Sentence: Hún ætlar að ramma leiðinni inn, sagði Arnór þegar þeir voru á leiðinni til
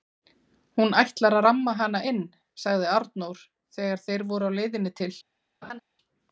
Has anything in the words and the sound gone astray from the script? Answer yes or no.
yes